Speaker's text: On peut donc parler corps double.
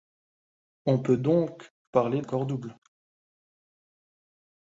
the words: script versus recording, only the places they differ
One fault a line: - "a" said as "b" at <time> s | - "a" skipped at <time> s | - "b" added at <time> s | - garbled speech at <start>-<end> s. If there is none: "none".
none